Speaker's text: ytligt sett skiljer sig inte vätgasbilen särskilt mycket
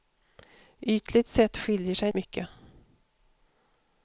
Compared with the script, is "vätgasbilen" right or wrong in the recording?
wrong